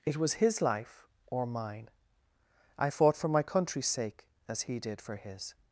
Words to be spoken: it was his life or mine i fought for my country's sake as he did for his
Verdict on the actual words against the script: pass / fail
pass